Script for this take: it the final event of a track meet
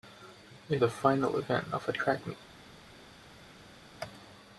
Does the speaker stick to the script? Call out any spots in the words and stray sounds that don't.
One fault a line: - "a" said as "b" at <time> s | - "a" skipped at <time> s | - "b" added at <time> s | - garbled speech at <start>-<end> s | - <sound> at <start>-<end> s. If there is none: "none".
none